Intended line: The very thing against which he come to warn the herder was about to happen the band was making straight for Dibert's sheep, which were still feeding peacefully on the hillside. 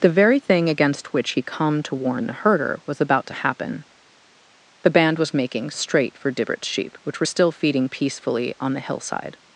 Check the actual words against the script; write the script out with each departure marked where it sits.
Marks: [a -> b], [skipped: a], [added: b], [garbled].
The very thing against which he come to warn the herder was about to happen the band was making straight for Dibert's sheep, which were still feeding peacefully on the hillside.